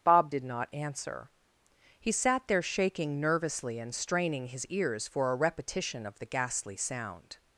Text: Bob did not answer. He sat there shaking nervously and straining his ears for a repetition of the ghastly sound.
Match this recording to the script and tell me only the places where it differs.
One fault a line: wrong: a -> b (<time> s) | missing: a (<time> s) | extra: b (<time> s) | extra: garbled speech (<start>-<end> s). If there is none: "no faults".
no faults